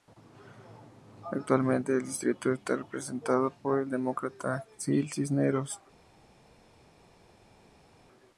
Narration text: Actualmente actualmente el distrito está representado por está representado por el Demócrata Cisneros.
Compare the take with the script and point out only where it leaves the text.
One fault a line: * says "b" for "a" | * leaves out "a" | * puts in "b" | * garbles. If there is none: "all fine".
* leaves out "actualmente"
* leaves out "está representado por"
* puts in "Gil"